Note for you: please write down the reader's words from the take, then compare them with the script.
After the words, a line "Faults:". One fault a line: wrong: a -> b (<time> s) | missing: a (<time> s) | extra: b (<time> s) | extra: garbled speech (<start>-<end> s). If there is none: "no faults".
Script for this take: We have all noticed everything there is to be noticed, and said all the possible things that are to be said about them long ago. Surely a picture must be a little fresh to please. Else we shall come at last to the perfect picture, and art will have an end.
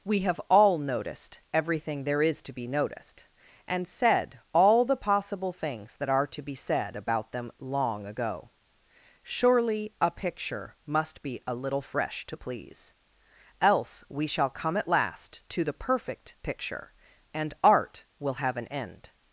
We have all noticed everything there is to be noticed, and said all the possible things that are to be said about them long ago. Surely a picture must be a little fresh to please. Else we shall come at last to the perfect picture, and art will have an end.
Faults:
no faults